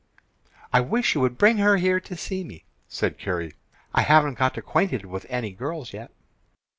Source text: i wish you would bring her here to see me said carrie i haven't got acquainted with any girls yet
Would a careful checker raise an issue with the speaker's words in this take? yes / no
no